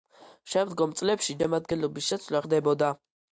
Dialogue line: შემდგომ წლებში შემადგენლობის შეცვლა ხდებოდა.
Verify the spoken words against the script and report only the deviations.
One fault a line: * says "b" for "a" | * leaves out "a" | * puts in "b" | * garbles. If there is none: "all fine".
all fine